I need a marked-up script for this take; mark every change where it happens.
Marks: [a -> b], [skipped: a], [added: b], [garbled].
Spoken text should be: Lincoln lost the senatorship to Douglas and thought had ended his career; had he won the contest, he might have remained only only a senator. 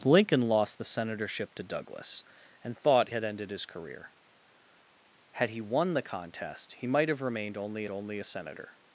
Lincoln lost the senatorship to Douglas and thought had ended his career; had he won the contest, he might have remained only only a senator.